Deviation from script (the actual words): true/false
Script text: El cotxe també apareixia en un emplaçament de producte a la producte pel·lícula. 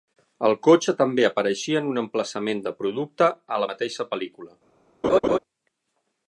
true